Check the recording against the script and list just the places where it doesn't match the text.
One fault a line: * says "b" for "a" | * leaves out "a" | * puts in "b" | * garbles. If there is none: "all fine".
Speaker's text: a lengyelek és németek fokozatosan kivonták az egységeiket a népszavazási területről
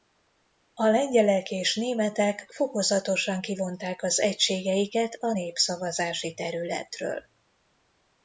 all fine